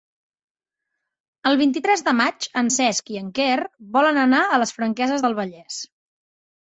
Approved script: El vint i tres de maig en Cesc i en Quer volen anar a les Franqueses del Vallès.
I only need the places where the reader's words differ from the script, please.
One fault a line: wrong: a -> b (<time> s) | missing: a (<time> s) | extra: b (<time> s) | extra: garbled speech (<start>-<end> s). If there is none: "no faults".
no faults